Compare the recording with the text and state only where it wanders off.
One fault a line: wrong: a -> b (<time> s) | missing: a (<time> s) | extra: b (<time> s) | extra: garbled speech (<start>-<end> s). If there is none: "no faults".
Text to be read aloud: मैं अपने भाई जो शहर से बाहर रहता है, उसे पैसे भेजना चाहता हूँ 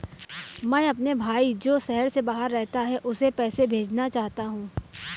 no faults